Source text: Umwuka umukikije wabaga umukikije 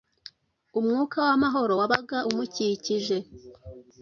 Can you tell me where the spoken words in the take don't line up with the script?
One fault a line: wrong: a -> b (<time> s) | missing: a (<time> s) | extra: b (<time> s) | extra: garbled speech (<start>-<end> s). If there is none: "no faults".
wrong: umukikije -> w'amahoro (1.2 s)